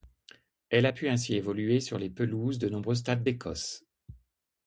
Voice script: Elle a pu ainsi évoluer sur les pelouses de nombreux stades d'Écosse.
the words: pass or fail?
pass